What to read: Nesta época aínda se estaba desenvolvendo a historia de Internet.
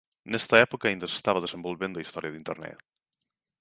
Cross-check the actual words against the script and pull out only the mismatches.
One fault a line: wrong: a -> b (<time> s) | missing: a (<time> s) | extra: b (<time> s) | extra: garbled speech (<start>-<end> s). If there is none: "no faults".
no faults